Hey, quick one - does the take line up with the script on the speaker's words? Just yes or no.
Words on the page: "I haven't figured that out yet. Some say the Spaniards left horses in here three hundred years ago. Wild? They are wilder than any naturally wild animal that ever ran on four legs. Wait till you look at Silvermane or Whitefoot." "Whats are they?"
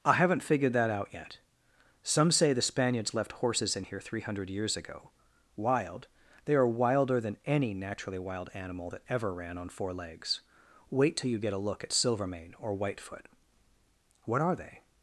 no